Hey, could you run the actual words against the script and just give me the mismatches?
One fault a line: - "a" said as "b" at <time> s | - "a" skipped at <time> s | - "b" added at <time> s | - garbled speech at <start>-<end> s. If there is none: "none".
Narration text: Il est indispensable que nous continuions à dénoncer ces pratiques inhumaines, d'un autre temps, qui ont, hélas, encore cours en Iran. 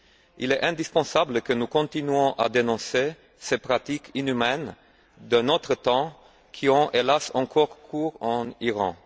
none